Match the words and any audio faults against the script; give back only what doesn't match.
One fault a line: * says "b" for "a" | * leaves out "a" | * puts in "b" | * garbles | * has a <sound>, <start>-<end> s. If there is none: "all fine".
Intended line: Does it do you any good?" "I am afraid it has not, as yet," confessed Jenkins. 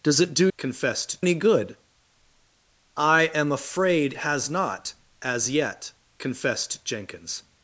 * says "confessed" for "you"
* leaves out "it"